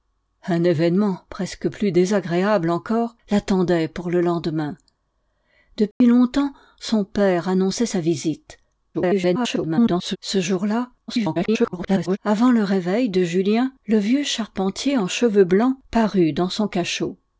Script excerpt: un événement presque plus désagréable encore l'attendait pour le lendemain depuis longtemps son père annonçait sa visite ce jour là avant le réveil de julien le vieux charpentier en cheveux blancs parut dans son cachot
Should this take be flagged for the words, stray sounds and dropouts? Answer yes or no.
yes